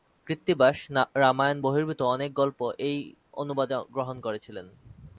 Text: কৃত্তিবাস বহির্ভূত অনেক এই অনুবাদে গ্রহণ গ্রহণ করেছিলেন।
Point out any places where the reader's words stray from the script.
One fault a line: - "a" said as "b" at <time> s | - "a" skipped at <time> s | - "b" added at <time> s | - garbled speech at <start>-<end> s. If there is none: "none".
- "রামায়ণ" added at 1.1 s
- "গল্প" added at 2.3 s
- "গ্রহণ" skipped at 4.2 s